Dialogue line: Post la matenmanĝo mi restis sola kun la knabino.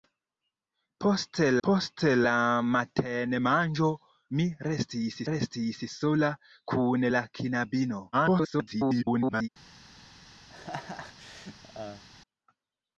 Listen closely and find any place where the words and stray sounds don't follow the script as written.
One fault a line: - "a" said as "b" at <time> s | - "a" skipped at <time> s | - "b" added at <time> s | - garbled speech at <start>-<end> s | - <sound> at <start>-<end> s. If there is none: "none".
- "post" added at 1.7 s
- "restis" added at 5.3 s
- garbled speech at 8.1-9.5 s
- laugh at 10.5-12.0 s